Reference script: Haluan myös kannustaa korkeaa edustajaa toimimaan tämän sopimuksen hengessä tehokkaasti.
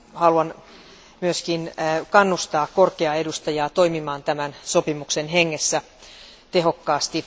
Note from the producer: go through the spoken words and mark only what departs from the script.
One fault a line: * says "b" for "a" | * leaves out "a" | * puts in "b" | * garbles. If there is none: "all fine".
all fine